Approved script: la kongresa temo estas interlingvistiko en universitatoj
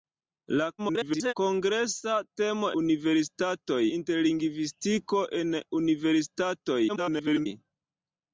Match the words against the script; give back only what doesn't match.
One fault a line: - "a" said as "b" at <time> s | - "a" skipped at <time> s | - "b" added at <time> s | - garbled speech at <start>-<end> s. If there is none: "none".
- garbled speech at 0.8-1.3 s
- "estas" said as "universitatoj" at 2.8 s
- garbled speech at 6.9-7.5 s